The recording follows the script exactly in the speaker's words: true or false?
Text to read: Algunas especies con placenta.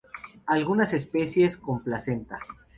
true